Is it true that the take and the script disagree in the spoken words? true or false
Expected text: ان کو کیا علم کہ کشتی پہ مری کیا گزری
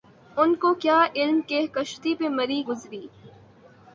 true